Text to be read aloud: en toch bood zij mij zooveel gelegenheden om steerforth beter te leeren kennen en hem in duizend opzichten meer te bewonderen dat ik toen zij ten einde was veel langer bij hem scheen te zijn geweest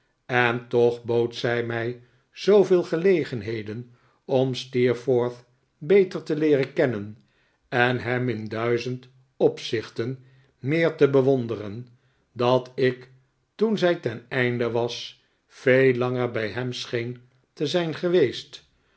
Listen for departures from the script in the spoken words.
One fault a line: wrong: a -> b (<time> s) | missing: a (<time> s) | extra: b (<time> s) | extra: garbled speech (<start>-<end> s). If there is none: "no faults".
no faults